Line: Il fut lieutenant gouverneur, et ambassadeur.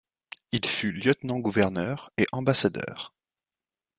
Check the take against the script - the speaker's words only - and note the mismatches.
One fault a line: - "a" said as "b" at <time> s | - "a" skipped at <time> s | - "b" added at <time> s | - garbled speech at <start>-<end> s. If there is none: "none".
none